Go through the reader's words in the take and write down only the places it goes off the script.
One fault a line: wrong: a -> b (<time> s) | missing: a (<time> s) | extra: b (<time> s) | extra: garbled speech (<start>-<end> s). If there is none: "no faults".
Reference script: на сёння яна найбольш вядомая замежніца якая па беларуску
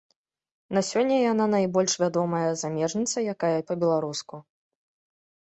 no faults